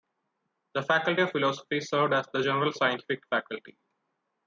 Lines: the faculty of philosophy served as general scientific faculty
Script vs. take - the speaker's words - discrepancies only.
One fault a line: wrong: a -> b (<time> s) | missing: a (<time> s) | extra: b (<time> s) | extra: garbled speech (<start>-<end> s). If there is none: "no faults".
extra: the (2.3 s)